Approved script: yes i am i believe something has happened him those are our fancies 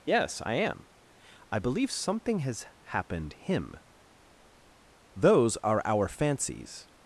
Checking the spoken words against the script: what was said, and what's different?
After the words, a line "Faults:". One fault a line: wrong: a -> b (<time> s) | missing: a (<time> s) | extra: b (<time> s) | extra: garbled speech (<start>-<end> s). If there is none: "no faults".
yes i am i believe something has happened him those are our fancies
Faults:
no faults